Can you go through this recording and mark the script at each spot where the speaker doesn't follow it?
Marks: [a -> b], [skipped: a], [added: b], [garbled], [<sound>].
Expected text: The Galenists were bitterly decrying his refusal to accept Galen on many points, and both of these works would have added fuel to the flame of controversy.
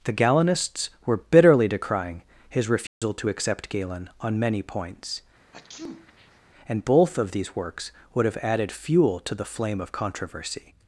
The Galenists were bitterly decrying his refusal [dropout] to accept Galen on many points, [sneeze] and both of these works would have added fuel to the flame of controversy.